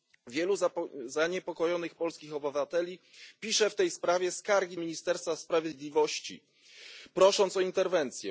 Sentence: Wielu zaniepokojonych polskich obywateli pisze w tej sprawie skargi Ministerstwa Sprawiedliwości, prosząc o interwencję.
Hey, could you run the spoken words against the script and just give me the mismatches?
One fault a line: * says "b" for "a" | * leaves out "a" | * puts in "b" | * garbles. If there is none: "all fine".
all fine